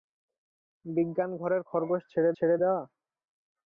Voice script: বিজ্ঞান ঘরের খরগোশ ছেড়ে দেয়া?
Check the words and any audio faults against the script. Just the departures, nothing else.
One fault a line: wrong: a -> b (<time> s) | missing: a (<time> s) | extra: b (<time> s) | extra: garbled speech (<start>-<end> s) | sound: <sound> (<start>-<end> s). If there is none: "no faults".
extra: ছেড়ে (2.4 s)